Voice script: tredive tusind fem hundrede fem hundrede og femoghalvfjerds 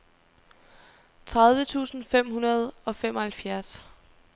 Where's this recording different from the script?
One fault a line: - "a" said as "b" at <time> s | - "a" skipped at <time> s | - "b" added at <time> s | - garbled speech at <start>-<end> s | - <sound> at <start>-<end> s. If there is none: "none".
- "fem hundrede" skipped at 2.7 s